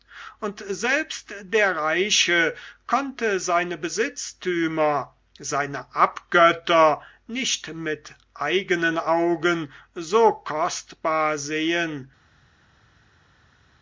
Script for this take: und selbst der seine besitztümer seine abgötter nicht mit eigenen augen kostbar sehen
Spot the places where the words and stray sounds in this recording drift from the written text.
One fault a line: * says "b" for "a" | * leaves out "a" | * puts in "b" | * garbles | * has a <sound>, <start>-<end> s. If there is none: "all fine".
* puts in "reiche konnte"
* puts in "so"